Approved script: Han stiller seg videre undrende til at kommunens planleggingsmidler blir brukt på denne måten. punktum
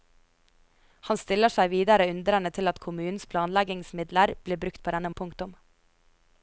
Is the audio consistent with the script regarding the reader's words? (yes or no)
no